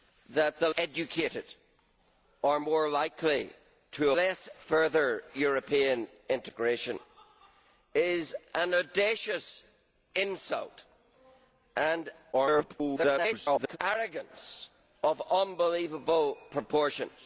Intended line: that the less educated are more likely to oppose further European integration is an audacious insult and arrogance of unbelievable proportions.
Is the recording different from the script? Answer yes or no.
yes